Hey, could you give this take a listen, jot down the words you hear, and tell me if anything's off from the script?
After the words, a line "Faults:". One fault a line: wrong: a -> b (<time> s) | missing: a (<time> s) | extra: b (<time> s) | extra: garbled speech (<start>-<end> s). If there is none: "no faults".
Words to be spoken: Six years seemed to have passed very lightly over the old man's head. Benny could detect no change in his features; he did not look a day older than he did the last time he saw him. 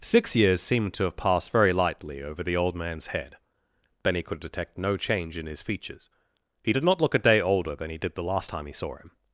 Six years seemed to have passed very lightly over the old man's head. Benny could detect no change in his features; he did not look a day older than he did the last time he saw him.
Faults:
no faults